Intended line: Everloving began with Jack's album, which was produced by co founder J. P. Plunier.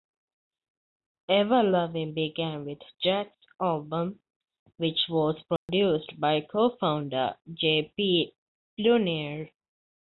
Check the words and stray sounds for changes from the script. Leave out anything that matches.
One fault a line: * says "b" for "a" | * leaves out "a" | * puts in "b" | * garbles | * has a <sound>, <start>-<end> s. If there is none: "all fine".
* has a dropout, 5.6-5.7 s